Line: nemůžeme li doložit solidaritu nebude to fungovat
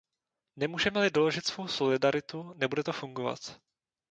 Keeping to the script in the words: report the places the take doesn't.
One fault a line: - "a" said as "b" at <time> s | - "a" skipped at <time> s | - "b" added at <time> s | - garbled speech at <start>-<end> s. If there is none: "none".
- "svou" added at 1.5 s